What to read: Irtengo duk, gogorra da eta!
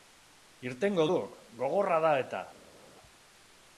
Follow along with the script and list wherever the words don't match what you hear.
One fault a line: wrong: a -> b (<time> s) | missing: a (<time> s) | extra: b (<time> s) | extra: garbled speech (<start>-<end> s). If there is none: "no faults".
no faults